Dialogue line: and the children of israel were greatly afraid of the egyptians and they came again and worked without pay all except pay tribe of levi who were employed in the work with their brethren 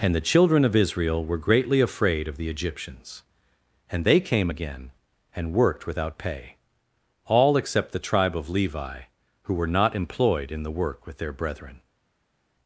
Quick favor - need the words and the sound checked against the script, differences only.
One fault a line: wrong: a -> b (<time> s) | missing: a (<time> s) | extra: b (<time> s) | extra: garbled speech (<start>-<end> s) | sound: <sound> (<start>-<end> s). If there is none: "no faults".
wrong: pay -> the (7.9 s)
extra: not (9.7 s)